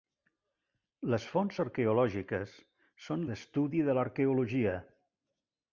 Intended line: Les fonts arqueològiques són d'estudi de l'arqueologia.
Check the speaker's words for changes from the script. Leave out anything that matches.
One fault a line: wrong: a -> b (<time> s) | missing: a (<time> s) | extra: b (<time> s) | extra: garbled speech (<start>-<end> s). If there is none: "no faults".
no faults